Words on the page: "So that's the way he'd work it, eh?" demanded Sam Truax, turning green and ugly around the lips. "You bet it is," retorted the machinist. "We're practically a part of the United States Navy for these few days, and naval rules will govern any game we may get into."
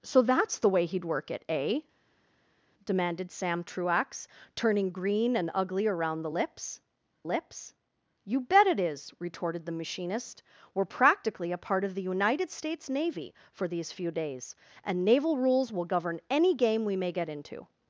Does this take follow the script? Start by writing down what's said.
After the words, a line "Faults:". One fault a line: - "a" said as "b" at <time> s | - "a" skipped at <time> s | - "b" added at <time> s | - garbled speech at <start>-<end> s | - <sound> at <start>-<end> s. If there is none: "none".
"So that's the way he'd work it, eh?" demanded Sam Truax, turning green and ugly around the lips lips. "You bet it is," retorted the machinist. "We're practically a part of the United States Navy for these few days, and naval rules will govern any game we may get into."
Faults:
- "lips" added at 7.2 s